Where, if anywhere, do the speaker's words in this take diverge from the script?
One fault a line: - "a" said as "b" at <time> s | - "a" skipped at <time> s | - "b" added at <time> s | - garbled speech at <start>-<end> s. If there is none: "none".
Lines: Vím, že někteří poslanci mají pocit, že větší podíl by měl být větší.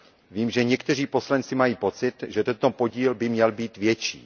- "větší" said as "tento" at 2.4 s